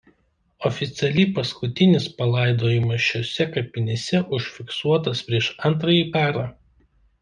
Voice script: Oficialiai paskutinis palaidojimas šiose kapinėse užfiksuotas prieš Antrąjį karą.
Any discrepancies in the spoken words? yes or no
no